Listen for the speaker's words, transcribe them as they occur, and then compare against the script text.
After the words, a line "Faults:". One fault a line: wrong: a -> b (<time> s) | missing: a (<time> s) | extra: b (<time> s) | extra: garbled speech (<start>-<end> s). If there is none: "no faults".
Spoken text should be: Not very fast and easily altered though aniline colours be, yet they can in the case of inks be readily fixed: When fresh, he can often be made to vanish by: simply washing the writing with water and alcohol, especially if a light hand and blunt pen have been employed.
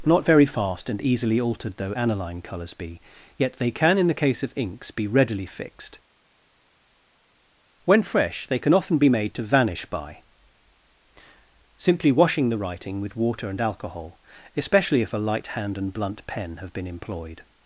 Not very fast and easily altered though aniline colours be, yet they can in the case of inks be readily fixed: When fresh, they can often be made to vanish by: simply washing the writing with water and alcohol, especially if a light hand and blunt pen have been employed.
Faults:
wrong: he -> they (8.5 s)